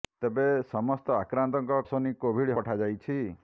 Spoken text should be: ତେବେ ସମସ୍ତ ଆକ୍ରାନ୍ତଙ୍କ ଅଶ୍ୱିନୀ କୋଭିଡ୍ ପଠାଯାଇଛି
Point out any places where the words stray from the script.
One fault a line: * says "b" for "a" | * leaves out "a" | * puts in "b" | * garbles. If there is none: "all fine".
all fine